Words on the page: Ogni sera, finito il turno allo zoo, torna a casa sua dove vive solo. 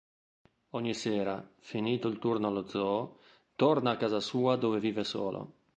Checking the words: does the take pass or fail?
pass